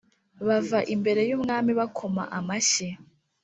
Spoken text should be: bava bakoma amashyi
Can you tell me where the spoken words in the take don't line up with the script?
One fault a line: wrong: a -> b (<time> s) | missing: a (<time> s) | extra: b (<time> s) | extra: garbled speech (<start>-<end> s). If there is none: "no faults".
extra: imbere yumwami (0.9 s)